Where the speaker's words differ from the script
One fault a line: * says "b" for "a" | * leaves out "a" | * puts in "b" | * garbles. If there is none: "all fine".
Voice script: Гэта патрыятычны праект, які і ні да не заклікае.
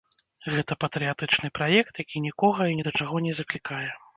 * puts in "нікога"
* puts in "чаго"